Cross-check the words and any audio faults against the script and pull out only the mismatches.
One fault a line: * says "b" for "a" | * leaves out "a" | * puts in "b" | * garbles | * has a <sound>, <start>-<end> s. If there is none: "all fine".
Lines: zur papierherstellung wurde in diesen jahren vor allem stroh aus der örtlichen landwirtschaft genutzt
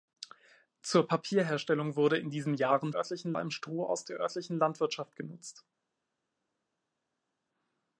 * says "örtlichen" for "vor"